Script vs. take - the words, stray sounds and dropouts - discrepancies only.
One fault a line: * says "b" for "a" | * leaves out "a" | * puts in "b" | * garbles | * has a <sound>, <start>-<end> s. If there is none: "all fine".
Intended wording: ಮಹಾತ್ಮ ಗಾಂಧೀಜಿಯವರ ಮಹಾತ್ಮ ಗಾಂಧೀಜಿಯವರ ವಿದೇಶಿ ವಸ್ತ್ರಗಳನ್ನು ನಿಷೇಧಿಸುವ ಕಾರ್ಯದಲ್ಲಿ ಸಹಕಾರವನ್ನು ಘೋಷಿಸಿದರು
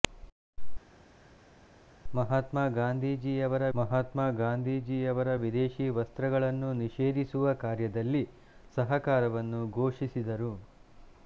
all fine